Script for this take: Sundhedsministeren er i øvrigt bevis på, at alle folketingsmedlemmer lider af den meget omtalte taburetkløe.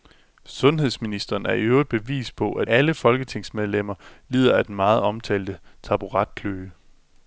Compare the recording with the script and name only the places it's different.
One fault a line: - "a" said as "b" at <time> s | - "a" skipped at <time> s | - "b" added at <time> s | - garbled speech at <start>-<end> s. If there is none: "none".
none